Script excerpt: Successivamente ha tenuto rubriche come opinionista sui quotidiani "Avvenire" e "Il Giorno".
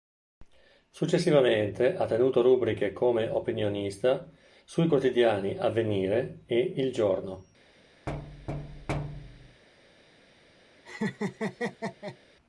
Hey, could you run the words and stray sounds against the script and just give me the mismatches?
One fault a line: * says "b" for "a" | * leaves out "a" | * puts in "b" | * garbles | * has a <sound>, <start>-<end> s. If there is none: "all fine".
* has a thud, 8.1-9.6 s
* has a laugh, 10.8-12.2 s